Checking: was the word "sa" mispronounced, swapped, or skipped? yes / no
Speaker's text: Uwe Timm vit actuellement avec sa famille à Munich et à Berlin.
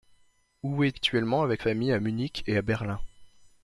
yes